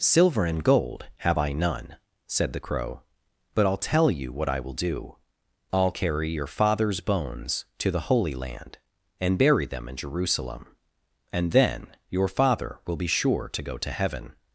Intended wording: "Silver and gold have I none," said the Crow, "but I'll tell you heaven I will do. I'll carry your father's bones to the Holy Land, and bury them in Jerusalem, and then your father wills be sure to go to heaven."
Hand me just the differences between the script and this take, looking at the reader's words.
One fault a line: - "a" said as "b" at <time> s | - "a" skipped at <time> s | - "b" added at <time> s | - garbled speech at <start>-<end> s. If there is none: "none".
- "heaven" said as "what" at 4.3 s
- "wills" said as "will" at 12.9 s